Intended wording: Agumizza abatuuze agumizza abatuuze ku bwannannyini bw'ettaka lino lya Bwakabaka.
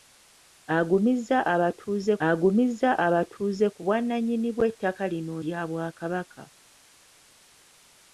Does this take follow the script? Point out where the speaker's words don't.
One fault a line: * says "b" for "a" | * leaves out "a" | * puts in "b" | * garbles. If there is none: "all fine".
all fine